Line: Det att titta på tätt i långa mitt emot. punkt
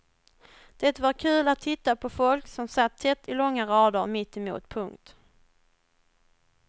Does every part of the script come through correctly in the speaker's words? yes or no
no